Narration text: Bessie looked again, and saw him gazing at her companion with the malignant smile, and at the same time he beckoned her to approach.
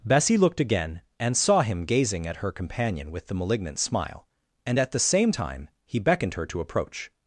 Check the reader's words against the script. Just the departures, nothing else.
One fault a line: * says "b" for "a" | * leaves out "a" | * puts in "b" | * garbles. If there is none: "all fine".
all fine